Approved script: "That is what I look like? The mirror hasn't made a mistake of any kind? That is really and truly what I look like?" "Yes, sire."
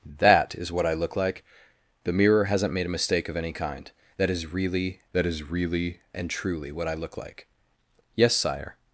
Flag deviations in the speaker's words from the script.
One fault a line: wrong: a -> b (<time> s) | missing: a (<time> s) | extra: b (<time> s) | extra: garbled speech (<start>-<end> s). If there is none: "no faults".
extra: that is really (5.1 s)